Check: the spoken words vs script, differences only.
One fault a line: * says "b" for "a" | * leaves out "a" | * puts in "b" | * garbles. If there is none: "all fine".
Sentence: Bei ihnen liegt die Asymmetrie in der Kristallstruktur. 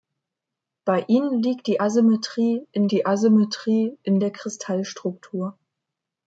* puts in "die Asymmetrie in"